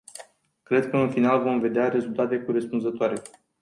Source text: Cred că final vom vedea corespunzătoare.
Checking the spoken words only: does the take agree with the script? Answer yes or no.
no